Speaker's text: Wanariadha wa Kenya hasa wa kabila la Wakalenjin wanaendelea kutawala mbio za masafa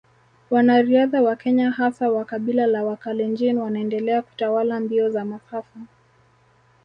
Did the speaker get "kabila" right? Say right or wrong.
right